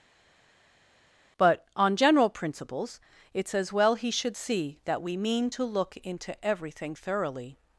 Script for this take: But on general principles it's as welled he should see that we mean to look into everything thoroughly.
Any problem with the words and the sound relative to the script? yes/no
yes